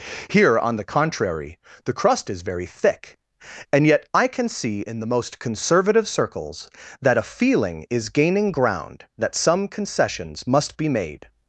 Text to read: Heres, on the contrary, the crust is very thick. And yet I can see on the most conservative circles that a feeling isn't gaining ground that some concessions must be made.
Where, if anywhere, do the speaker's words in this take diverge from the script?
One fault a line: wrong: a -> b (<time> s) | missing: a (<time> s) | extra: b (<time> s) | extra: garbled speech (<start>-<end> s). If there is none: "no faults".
wrong: Heres -> Here (0.3 s)
wrong: on -> in (4.8 s)
wrong: isn't -> is (7.9 s)